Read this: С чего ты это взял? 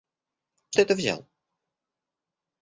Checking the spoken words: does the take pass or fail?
fail